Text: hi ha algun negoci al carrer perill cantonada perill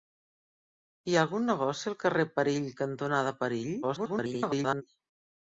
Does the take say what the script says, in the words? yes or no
no